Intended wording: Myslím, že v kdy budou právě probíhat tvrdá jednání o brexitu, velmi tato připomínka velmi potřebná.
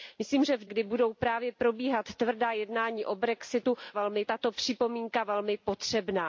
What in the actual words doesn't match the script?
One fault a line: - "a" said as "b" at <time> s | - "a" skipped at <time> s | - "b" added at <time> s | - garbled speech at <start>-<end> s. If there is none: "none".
none